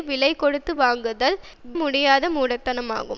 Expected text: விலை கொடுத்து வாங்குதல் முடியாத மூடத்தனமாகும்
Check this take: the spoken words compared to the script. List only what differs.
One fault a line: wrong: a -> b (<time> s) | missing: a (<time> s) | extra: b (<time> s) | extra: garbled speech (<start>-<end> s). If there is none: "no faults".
no faults